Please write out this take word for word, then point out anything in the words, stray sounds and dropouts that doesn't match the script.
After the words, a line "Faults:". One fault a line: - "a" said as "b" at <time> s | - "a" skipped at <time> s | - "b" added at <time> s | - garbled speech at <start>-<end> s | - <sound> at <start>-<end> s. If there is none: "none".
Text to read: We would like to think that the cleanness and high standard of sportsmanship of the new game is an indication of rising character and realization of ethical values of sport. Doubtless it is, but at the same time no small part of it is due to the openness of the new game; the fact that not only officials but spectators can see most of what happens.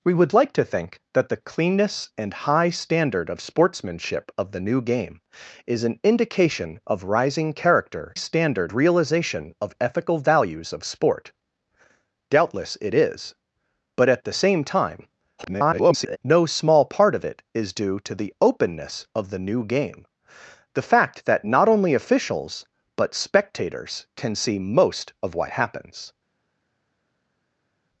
We would like to think that the cleanness and high standard of sportsmanship of the new game is an indication of rising character standard realization of ethical values of sport. Doubtless it is, but at the same time [garbled] no small part of it is due to the openness of the new game; the fact that not only officials but spectators can see most of what happens.
Faults:
- "and" said as "standard" at 8.1 s
- garbled speech at 15.4-16.2 s